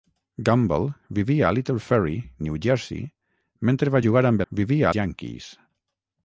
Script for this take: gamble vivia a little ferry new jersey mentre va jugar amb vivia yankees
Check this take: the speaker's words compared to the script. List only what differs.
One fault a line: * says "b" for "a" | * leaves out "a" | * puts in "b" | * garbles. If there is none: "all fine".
all fine